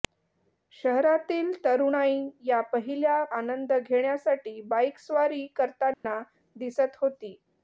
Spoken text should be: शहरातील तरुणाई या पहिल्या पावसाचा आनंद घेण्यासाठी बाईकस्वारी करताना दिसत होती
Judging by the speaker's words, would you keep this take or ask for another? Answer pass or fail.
fail